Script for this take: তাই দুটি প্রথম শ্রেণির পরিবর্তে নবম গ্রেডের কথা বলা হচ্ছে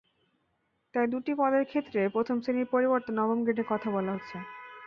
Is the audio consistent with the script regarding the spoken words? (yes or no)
no